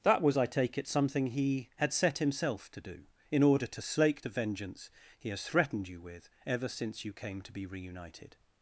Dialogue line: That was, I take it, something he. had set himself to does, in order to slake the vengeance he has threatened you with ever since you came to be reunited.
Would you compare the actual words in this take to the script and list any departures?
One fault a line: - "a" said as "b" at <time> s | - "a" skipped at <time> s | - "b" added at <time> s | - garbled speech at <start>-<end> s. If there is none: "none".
- "does" said as "do" at 2.8 s